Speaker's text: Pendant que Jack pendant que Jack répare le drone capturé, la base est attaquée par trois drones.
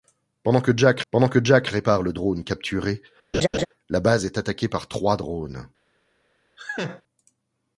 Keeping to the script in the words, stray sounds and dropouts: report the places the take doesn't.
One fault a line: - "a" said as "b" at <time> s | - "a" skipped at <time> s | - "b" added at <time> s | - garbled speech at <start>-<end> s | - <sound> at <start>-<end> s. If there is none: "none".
- laugh at 3.3-3.7 s
- laugh at 6.6-7.0 s